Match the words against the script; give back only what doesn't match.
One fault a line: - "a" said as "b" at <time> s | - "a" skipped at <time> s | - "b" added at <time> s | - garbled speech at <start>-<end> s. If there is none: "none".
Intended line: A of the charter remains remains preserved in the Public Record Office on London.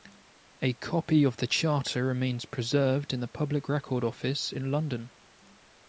- "copy" added at 0.7 s
- "remains" skipped at 2.5 s
- "on" said as "in" at 4.5 s